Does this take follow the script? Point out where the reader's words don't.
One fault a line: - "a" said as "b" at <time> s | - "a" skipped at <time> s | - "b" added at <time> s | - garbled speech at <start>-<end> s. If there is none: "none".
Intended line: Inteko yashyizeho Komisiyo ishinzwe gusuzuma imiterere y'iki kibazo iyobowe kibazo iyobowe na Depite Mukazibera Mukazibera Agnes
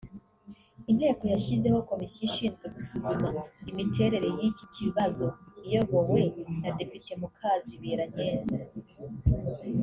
- "kibazo iyobowe" skipped at 6.2 s
- "Mukazibera" skipped at 8.0 s